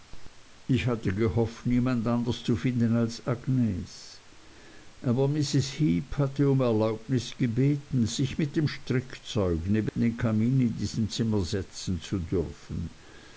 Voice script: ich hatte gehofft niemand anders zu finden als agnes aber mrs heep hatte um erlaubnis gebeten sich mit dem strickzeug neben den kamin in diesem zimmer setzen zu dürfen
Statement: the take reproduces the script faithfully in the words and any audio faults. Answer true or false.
false